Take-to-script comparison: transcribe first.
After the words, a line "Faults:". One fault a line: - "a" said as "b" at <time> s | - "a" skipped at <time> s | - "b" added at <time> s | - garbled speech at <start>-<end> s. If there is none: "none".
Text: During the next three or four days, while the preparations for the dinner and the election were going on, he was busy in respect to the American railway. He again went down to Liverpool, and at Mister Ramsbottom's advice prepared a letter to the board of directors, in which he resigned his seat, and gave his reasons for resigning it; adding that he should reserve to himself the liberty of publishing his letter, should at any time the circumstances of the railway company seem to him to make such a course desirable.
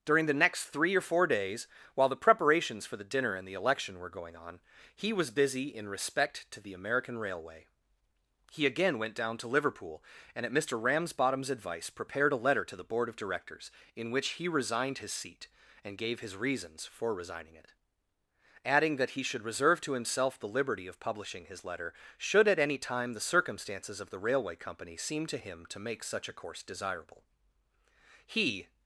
During the next three or four days, while the preparations for the dinner and the election were going on, he was busy in respect to the American railway. He again went down to Liverpool, and at Mister Ramsbottom's advice prepared a letter to the board of directors, in which he resigned his seat, and gave his reasons for resigning it; adding that he should reserve to himself the liberty of publishing his letter, should at any time the circumstances of the railway company seem to him to make such a course desirable. He
Faults:
- "He" added at 28.2 s